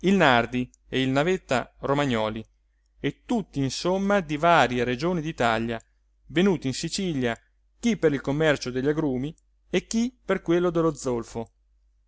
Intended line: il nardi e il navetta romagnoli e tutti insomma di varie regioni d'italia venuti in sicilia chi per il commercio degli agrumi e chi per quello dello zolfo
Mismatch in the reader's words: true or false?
false